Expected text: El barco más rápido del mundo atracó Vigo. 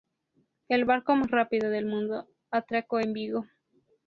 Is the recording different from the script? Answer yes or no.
yes